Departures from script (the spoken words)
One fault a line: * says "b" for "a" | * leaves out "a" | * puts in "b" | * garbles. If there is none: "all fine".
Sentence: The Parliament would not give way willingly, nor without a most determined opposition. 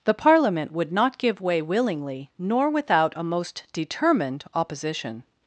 all fine